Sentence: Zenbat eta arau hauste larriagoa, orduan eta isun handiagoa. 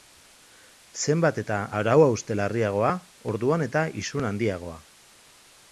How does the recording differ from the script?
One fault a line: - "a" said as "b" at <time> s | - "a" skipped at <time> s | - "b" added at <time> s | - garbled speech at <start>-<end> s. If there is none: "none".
none